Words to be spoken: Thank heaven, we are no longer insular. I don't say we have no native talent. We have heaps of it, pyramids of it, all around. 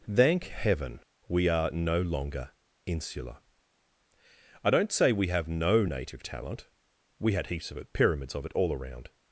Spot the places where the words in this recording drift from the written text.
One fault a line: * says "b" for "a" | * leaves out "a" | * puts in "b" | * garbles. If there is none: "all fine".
* says "had" for "have"